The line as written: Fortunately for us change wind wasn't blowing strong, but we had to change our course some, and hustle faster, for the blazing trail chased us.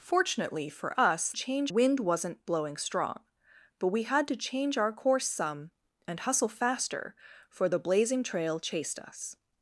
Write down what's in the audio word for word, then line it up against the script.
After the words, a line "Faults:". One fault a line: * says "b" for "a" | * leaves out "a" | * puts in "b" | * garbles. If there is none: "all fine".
Fortunately for us change wind wasn't blowing strong, but we had to change our course some, and hustle faster, for the blazing trail chased us.
Faults:
all fine